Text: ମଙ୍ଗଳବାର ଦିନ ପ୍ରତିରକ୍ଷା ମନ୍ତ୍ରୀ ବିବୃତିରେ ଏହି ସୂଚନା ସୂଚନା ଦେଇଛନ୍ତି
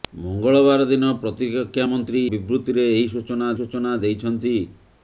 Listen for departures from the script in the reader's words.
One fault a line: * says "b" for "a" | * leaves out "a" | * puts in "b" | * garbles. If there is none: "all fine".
all fine